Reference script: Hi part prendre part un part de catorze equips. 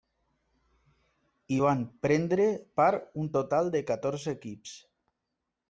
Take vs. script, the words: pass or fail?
fail